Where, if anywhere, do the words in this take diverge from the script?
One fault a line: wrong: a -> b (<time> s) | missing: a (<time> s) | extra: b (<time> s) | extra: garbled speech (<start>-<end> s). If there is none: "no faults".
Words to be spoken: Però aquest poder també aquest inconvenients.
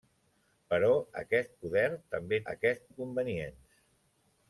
no faults